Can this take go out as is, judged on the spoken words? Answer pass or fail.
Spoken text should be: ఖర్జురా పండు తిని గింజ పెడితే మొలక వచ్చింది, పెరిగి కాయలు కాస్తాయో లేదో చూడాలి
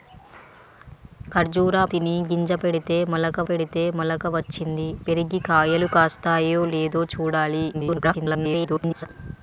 fail